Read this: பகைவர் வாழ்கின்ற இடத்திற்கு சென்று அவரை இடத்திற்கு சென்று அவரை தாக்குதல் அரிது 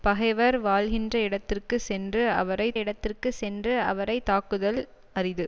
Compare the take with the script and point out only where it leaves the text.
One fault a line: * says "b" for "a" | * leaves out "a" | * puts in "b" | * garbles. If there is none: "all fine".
all fine